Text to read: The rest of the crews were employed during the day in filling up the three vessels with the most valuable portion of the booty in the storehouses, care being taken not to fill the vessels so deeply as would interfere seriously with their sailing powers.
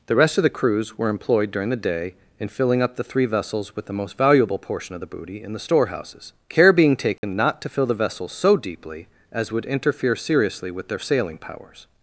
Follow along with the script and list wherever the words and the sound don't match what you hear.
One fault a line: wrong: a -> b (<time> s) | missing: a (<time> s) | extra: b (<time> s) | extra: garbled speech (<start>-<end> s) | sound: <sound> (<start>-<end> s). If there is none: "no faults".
sound: dropout (7.2-7.2 s)